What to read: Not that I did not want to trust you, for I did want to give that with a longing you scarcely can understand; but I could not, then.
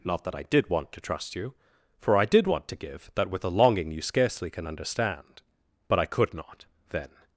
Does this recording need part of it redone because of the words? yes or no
yes